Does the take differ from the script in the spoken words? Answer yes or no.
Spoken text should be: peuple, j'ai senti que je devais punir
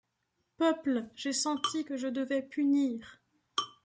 no